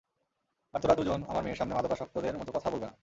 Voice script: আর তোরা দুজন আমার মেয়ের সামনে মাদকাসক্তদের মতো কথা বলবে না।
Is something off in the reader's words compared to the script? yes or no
no